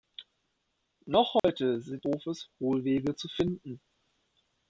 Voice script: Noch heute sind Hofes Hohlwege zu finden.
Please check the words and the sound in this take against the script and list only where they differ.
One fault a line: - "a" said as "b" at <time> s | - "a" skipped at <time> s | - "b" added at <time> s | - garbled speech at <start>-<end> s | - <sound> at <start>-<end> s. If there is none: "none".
- dropout at 1.4-1.4 s